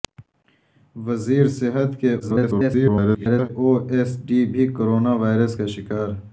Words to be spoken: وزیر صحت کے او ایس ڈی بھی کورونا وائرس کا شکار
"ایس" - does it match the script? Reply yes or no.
yes